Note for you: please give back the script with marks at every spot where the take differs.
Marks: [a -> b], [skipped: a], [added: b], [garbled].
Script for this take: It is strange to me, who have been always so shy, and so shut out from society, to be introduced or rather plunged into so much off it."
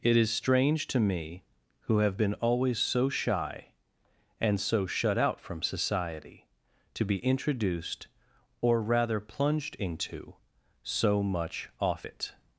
It is strange to me, who have been always so shy, and so shut out from society, to be introduced or rather plunged into so much off it."